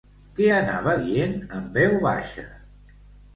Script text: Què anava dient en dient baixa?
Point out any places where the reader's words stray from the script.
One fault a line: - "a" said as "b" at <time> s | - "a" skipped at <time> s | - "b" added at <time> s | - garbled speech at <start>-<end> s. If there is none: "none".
- "dient" said as "veu" at 1.8 s